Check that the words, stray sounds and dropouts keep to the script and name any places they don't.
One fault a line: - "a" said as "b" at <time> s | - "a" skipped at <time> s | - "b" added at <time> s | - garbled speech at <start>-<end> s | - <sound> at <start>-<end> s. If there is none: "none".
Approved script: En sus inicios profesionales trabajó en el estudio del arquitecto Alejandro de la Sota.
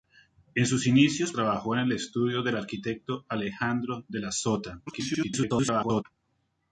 - "profesionales" skipped at 1.3 s
- garbled speech at 4.9-6.0 s